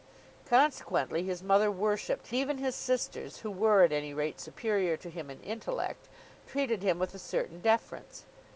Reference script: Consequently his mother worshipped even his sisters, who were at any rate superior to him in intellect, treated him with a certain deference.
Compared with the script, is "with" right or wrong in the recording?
right